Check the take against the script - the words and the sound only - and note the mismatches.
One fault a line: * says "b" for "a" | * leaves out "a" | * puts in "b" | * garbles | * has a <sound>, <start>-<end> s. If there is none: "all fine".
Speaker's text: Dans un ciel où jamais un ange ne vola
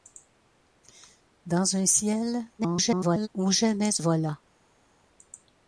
* garbles
* leaves out "un ange ne"